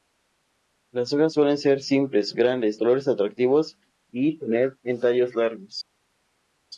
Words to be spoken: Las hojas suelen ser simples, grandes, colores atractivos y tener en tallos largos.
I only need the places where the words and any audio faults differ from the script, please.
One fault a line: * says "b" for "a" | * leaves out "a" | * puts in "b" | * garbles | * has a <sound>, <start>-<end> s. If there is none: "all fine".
all fine